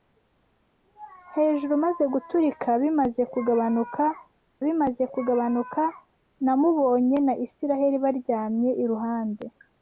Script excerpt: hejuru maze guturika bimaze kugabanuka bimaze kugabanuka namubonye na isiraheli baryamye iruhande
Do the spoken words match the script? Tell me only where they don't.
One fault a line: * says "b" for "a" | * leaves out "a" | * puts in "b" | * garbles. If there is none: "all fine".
all fine